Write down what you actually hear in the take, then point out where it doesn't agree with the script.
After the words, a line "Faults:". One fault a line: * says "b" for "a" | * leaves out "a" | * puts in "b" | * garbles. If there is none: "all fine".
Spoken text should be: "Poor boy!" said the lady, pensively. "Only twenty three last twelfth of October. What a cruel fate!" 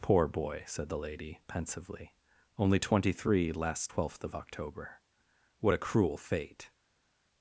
"Poor boy!" said the lady, pensively. "Only twenty three last twelfth of October. What a cruel fate!"
Faults:
all fine